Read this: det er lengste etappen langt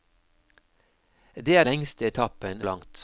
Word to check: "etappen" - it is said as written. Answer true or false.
true